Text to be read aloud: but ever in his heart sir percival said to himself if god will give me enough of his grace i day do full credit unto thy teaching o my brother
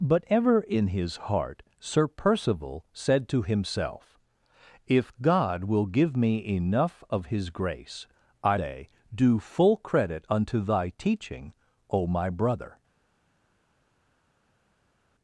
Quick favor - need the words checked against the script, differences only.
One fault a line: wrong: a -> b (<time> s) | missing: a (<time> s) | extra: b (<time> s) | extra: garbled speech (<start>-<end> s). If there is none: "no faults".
no faults